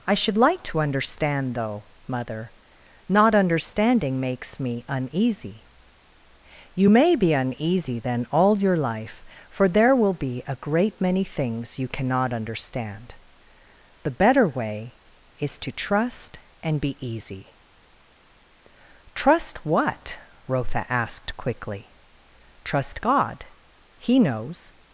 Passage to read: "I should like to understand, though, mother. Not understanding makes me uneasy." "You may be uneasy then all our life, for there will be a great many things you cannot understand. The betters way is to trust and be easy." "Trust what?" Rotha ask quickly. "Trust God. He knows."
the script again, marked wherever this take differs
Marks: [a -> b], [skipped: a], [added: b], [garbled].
"I should like to understand, though, mother. Not understanding makes me uneasy." "You may be uneasy then all [our -> your] life, for there will be a great many things you cannot understand. The [betters -> better] way is to trust and be easy." "Trust what?" Rotha [ask -> asked] quickly. "Trust God. He knows."